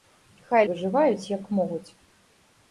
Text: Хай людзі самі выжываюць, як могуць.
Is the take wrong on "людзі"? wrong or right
wrong